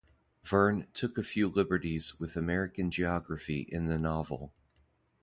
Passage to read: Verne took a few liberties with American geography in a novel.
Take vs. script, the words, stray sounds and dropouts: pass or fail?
fail